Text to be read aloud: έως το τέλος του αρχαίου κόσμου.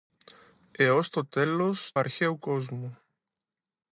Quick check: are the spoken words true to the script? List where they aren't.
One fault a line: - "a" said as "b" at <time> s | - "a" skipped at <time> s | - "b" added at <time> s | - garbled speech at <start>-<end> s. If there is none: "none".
- "του" skipped at 1.9 s